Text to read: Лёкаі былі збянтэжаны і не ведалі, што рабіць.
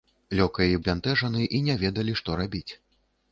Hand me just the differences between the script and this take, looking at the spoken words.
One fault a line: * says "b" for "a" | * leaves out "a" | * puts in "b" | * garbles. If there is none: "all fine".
* leaves out "былі"